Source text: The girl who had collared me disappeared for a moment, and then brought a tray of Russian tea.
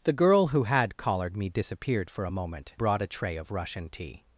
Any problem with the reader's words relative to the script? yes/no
yes